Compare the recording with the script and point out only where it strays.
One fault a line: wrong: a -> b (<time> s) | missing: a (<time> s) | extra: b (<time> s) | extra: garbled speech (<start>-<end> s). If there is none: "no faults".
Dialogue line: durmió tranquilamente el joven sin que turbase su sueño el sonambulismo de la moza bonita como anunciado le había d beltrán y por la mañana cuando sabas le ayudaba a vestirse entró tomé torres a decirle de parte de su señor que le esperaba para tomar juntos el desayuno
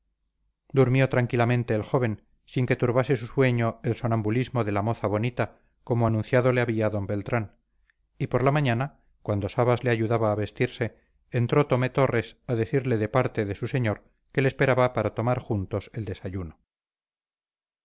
no faults